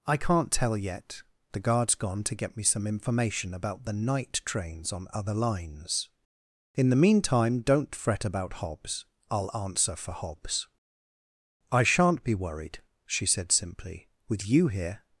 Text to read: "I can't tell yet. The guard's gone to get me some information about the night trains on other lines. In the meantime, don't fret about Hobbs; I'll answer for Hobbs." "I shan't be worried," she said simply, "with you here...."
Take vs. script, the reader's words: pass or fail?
pass